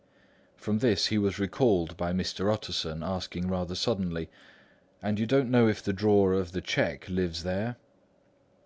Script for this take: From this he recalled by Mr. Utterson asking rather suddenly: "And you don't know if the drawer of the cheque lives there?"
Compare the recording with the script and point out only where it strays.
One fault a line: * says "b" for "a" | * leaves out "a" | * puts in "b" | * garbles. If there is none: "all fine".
* puts in "was"